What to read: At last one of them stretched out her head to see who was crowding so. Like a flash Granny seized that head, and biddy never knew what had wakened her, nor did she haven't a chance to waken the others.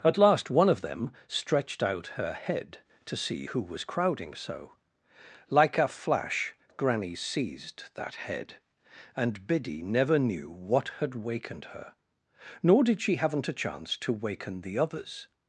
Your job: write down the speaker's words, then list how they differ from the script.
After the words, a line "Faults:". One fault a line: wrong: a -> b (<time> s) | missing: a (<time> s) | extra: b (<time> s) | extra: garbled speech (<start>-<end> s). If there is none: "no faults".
At last one of them stretched out her head to see who was crowding so. Like a flash Granny seized that head, and biddy never knew what had wakened her, nor did she haven't a chance to waken the others.
Faults:
no faults